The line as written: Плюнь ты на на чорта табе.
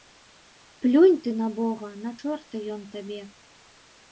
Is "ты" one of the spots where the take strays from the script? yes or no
no